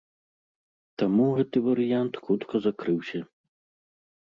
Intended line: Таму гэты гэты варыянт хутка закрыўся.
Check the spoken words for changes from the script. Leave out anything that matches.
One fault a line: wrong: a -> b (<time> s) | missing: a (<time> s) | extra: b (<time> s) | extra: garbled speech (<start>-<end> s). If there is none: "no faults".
missing: гэты (1.6 s)